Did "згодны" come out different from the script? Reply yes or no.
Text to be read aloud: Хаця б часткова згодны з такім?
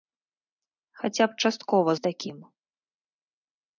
yes